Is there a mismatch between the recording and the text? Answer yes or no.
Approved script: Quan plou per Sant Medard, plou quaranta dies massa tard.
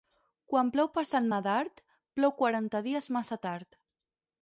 no